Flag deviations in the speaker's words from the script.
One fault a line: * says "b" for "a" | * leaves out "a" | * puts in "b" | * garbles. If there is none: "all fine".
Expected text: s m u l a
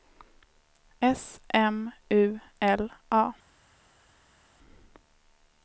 all fine